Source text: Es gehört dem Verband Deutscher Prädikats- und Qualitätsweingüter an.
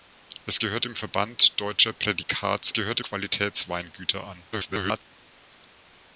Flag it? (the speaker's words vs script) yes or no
yes